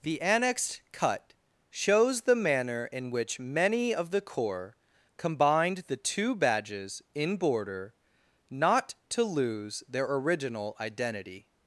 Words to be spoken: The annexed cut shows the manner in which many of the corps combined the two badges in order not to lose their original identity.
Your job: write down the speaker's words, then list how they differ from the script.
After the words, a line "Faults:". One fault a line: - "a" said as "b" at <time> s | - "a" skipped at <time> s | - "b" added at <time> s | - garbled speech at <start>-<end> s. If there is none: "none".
The annexed cut shows the manner in which many of the corps combined the two badges in border not to lose their original identity.
Faults:
- "order" said as "border" at 7.4 s